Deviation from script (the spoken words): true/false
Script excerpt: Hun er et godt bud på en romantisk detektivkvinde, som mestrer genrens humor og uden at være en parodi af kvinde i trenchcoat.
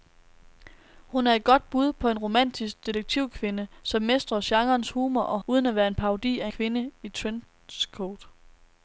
false